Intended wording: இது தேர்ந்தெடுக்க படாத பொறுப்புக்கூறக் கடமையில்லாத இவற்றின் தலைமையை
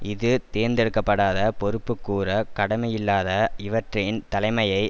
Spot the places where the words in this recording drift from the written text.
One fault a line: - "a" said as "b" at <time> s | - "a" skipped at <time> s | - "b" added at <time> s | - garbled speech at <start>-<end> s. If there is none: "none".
none